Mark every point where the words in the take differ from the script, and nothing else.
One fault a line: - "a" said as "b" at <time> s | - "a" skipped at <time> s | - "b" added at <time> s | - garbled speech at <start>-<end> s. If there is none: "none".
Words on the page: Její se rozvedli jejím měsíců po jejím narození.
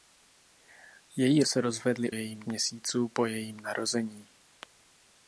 none